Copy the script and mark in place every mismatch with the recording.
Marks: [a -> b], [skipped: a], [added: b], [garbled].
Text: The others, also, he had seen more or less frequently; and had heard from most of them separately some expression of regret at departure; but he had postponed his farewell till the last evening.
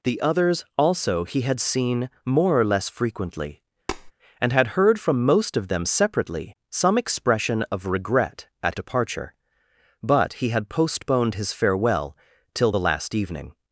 The others, also, he had seen more or less frequently; and had heard from most of them separately some expression of regret at departure; but he had postponed his farewell till the last evening.